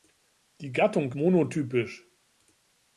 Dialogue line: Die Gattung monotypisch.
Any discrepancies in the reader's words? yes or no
no